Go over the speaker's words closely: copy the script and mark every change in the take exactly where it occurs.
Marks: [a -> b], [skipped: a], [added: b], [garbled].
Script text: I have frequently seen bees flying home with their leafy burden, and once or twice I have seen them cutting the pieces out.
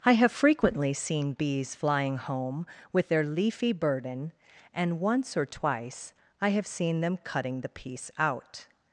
I have frequently seen bees flying home with their leafy burden, and once or twice I have seen them cutting the [pieces -> piece] out.